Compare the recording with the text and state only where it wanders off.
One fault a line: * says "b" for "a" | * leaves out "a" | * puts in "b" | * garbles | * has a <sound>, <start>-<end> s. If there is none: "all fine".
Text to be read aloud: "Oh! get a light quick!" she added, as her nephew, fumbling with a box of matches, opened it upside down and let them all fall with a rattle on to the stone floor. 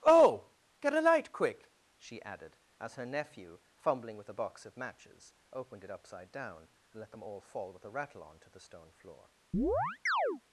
* has a chirp, 9.5-10.4 s